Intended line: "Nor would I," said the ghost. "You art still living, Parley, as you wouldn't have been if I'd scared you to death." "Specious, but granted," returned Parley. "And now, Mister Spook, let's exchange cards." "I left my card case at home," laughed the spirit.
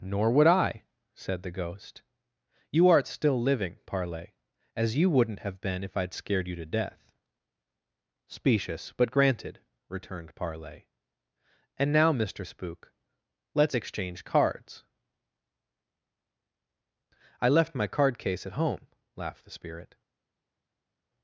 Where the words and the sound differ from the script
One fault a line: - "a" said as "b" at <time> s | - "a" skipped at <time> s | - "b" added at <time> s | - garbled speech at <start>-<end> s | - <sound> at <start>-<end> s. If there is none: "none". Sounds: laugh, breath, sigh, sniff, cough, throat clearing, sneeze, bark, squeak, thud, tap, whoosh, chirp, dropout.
none